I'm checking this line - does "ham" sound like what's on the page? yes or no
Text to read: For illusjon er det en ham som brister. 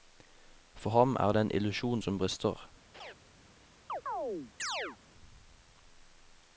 no